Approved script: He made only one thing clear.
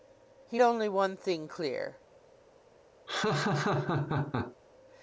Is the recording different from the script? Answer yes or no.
yes